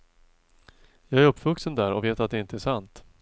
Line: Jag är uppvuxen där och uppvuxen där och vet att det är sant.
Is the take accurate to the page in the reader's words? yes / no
no